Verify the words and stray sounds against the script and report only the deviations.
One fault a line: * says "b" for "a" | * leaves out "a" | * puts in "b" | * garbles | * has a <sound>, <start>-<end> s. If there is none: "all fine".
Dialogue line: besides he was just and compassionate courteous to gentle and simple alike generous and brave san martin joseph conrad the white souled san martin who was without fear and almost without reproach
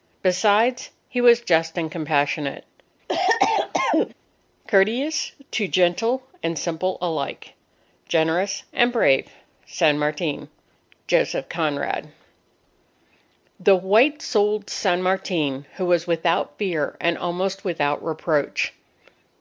* has a cough, 3.1-4.1 s